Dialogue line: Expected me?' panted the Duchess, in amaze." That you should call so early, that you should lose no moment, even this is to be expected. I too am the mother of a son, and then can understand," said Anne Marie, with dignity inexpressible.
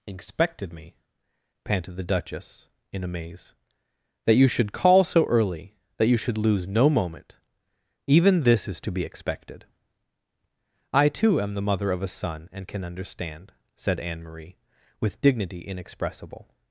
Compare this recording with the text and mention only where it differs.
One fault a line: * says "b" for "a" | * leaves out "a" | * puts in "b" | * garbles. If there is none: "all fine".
* leaves out "then"